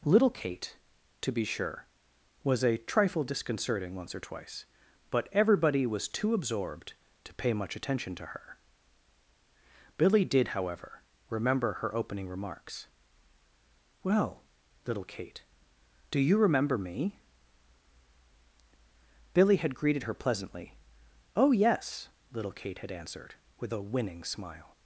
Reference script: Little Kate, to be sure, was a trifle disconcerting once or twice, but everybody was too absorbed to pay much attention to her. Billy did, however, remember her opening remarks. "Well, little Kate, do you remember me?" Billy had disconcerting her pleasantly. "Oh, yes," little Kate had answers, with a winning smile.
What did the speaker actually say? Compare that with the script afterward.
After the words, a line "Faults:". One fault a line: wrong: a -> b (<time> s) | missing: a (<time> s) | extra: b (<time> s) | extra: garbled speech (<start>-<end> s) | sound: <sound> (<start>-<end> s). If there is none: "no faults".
Little Kate, to be sure, was a trifle disconcerting once or twice, but everybody was too absorbed to pay much attention to her. Billy did, however, remember her opening remarks. "Well, little Kate, do you remember me?" Billy had greeted her pleasantly. "Oh, yes," little Kate had answered, with a winning smile.
Faults:
wrong: disconcerting -> greeted (19.8 s)
wrong: answers -> answered (22.9 s)